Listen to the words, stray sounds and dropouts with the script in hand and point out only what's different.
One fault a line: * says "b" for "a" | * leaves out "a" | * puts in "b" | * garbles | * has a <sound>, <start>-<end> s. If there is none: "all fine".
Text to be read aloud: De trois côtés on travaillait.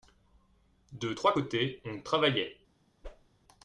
* has a whoosh, 3.0-3.3 s